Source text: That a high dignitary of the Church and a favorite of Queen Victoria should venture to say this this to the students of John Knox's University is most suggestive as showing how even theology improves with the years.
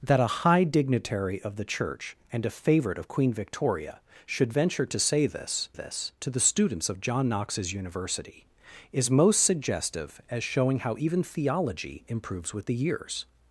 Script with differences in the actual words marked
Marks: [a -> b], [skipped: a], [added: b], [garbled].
That a high dignitary of the Church and a favorite of Queen Victoria should venture to say this this to the students of John Knox's University is most suggestive as showing how even theology improves with the years.